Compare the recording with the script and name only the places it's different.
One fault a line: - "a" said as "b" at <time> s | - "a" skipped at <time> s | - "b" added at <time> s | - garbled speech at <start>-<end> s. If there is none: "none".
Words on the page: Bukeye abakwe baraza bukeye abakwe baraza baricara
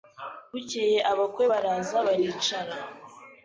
- "bukeye abakwe baraza" skipped at 2.0 s